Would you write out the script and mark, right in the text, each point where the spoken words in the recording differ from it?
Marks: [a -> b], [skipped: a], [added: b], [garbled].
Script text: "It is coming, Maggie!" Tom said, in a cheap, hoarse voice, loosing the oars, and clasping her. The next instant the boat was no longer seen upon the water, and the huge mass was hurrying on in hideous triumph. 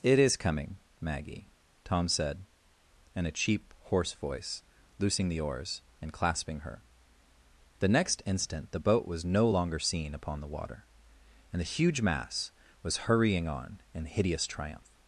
"It is coming, Maggie!" Tom said, in a cheap, hoarse voice, loosing the oars, and clasping her. The next instant the boat was no longer seen upon the water, and the huge mass was hurrying on in hideous triumph.